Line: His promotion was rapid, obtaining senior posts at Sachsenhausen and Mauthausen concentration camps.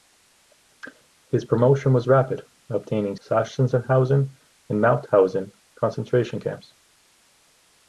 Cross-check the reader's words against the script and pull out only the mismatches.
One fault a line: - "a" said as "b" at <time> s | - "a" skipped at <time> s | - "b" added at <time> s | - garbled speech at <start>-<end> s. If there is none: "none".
- "senior posts at" skipped at 3.1 s